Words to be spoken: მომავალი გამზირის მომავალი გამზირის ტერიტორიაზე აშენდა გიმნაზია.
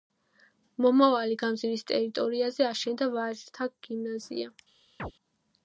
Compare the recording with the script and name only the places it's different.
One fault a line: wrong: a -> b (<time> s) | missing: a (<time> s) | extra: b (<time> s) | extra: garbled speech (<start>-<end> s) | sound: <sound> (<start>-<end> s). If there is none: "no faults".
missing: მომავალი გამზირის (1.9 s)
extra: ვაჟთა (3.2 s)
sound: chirp (5.0-5.1 s)